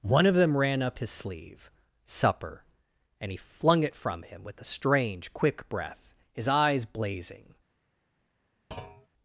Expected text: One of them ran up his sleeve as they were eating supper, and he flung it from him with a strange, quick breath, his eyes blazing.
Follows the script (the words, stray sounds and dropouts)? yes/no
no